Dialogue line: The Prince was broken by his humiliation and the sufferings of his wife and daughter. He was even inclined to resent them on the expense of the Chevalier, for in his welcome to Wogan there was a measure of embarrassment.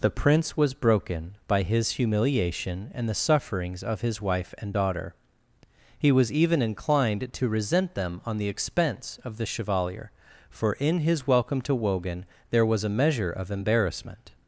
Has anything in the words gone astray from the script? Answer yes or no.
no